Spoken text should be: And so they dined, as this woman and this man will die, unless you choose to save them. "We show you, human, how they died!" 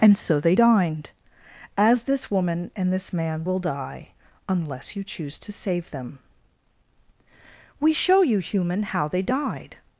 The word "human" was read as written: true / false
true